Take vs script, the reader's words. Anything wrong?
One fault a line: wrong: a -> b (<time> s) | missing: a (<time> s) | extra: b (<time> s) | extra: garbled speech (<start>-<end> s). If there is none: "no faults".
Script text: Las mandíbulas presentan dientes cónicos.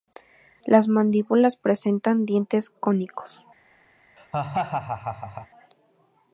no faults